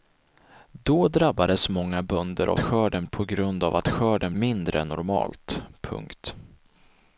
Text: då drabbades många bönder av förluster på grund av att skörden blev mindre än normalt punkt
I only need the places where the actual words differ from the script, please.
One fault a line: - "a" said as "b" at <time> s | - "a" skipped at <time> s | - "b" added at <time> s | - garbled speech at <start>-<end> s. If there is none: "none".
- "förluster" said as "skörden" at 2.6 s
- "blev" skipped at 4.3 s